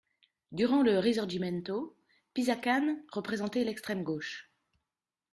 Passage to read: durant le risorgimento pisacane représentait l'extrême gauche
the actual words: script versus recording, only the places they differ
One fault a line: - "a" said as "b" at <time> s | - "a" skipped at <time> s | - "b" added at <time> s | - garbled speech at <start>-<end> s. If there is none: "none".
none